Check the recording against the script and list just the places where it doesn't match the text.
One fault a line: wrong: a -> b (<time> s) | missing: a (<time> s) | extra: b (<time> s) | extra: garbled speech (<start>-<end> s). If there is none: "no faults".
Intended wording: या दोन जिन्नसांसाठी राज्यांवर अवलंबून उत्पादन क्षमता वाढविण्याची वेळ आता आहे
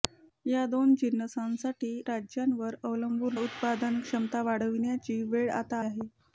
no faults